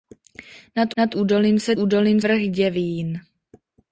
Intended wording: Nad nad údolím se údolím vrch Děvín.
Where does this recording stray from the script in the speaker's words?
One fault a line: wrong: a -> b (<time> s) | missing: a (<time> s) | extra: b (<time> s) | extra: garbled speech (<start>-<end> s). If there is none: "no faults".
no faults